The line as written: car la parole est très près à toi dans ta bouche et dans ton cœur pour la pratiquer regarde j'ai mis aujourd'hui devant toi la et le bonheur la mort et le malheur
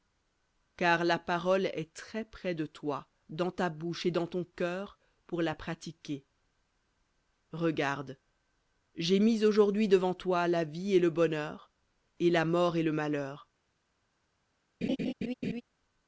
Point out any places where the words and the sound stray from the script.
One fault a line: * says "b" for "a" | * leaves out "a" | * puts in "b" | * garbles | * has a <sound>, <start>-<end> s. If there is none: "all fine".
* says "de" for "à"
* puts in "vie"
* puts in "et"
* has a laugh, 14.8-15.6 s